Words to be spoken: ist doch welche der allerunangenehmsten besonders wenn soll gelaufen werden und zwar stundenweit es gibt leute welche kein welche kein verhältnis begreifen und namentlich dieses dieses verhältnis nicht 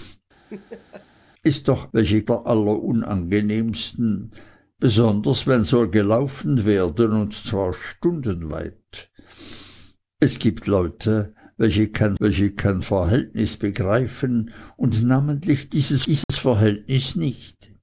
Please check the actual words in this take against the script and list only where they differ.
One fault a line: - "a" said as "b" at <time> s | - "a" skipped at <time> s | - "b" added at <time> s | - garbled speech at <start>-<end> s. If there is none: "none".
none